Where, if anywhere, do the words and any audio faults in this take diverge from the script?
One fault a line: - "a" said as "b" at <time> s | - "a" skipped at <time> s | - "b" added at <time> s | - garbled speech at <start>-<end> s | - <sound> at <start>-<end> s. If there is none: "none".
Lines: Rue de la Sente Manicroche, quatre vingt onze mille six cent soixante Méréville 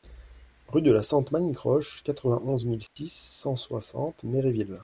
- dropout at 2.9-3.0 s